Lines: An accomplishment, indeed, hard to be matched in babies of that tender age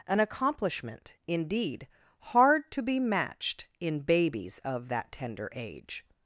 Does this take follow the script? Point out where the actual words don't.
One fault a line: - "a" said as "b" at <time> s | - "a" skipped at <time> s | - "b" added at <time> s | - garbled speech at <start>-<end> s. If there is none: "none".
none